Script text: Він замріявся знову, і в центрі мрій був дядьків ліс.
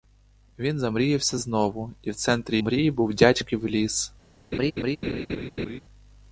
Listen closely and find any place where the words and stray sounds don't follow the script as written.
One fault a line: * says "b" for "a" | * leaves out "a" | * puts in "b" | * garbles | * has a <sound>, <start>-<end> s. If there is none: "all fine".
* has a laugh, 4.5-5.8 s